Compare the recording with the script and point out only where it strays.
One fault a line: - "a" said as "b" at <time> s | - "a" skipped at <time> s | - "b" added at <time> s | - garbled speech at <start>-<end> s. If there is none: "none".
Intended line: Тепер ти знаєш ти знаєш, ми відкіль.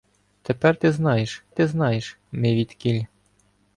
none